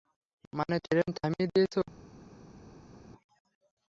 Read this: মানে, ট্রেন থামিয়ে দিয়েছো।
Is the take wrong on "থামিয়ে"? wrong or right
right